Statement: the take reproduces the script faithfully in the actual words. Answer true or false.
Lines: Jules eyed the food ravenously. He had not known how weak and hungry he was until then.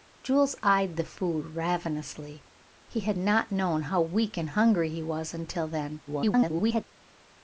false